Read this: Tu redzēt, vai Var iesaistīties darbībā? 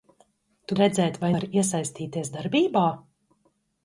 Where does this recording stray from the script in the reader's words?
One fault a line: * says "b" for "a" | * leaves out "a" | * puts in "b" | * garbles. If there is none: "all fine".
all fine